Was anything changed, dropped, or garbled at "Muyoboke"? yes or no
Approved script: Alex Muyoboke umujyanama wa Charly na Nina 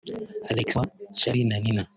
yes